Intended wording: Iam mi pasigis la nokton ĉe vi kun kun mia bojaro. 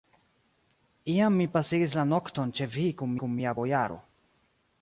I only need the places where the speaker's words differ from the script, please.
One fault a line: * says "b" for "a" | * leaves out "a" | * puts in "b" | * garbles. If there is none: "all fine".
all fine